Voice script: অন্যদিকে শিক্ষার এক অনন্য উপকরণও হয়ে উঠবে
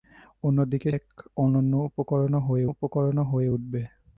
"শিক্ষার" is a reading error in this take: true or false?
true